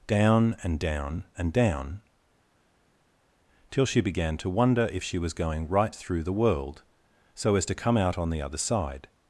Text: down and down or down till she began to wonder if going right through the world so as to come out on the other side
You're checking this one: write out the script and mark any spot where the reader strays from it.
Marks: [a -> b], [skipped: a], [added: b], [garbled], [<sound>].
down and down [or -> and] down till she began to wonder if [added: she was] going right through the world so as to come out on the other side